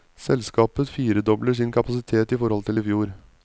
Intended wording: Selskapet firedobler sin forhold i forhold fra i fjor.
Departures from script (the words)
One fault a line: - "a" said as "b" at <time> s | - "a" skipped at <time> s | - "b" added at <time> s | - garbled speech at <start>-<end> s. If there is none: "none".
- "forhold" said as "kapasitet" at 1.7 s
- "fra" said as "til" at 2.6 s